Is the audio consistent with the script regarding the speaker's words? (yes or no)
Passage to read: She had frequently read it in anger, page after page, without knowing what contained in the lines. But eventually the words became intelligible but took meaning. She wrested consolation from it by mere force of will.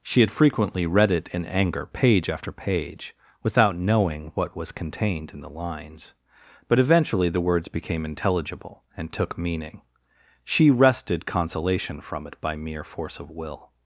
no